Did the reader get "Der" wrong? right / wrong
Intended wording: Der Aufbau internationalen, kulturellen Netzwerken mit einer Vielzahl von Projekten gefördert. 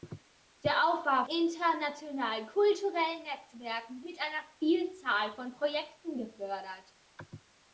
right